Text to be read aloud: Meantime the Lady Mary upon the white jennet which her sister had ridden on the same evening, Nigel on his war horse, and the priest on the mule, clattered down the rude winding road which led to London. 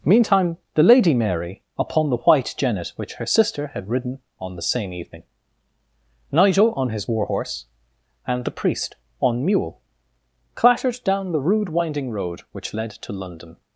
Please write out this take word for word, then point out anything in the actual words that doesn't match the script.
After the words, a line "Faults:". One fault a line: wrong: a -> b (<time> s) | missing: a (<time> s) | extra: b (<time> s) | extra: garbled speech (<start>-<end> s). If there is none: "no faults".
Meantime the Lady Mary upon the white jennet which her sister had ridden on the same evening, Nigel on his war horse, and the priest on mule, clattered down the rude winding road which led to London.
Faults:
missing: the (9.4 s)